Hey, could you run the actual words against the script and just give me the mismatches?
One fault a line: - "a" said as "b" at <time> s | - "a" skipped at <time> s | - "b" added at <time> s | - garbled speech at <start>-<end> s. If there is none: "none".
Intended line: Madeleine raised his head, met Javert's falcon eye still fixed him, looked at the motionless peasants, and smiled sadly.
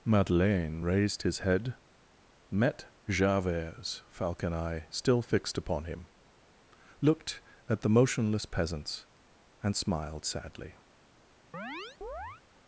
- "upon" added at 5.6 s